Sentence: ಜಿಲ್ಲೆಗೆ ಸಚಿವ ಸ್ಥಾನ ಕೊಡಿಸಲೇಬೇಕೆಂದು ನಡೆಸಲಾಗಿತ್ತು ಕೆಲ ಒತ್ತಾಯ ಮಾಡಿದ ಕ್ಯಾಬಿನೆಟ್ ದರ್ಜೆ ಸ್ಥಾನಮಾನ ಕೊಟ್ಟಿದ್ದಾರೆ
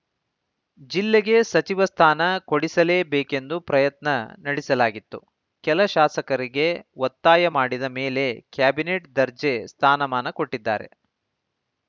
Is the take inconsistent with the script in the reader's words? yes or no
yes